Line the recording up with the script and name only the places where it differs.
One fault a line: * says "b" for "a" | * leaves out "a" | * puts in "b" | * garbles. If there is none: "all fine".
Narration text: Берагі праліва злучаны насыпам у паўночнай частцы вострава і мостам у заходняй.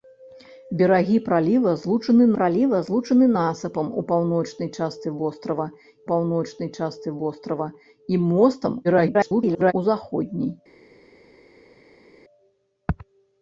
* puts in "праліва злучаны"
* puts in "паўночнай частцы вострава"
* garbles